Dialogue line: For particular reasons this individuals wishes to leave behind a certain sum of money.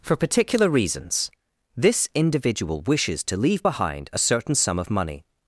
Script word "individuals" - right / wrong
wrong